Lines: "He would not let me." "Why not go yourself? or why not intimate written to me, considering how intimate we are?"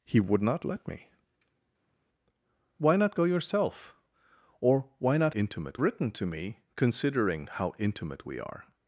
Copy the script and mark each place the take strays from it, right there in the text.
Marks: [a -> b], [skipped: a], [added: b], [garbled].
"He would not let me." "Why not go yourself? or why not intimate written to me, considering how intimate we are?"